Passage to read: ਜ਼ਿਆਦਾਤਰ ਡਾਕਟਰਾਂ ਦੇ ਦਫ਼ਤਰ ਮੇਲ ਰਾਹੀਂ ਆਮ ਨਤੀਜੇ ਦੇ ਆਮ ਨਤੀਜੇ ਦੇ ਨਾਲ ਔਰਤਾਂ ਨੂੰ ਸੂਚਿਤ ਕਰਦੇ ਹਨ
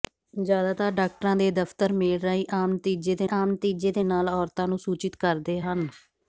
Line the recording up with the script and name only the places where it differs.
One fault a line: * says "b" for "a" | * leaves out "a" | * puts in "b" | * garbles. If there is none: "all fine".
all fine